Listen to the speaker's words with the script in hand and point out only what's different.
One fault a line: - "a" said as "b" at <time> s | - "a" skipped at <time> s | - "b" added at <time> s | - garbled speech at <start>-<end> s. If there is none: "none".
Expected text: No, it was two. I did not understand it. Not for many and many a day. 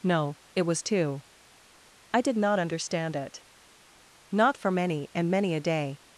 none